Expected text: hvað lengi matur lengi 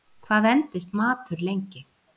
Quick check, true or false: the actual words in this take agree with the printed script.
false